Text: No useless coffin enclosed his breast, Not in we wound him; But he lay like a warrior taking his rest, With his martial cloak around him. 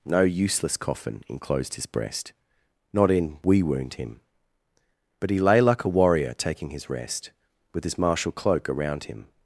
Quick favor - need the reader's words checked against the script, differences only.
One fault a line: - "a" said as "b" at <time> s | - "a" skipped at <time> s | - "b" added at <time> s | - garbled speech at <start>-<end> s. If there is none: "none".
none